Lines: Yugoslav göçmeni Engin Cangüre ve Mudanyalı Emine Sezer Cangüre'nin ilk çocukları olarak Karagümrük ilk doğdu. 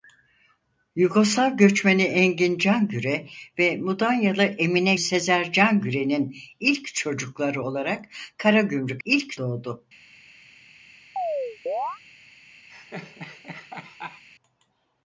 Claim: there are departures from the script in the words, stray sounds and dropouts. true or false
true